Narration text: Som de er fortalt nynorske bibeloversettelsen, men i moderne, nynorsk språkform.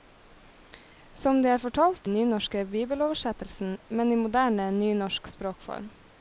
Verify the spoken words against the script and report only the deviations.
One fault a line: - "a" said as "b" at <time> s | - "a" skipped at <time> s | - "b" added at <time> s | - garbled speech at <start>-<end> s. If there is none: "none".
none